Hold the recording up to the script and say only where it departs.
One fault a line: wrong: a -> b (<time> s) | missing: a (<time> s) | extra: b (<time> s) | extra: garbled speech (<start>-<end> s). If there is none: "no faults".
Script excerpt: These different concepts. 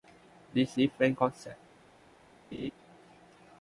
no faults